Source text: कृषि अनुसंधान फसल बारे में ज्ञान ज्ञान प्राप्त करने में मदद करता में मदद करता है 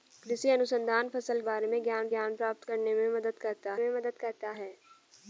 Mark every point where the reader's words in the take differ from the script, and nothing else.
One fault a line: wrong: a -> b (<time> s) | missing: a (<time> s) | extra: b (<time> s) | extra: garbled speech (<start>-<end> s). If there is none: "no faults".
no faults